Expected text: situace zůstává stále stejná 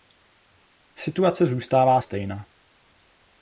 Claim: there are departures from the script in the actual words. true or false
true